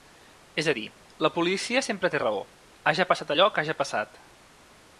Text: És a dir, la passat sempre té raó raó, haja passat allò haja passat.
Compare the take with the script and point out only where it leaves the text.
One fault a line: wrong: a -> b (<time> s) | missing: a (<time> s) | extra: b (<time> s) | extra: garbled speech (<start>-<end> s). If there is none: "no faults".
wrong: passat -> policia (1.4 s)
missing: raó (2.5 s)
extra: que (3.5 s)